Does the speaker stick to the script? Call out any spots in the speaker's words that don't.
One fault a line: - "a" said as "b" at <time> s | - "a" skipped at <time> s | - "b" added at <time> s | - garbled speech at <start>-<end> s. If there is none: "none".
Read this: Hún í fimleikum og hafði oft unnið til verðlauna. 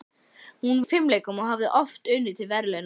none